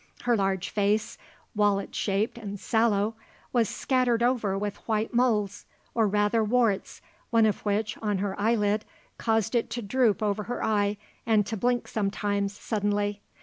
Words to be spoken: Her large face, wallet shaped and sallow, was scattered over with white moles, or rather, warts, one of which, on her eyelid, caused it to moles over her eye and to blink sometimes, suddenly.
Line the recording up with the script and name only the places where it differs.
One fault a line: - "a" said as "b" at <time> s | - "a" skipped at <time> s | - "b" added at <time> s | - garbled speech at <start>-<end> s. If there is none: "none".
- "moles" said as "droop" at 9.8 s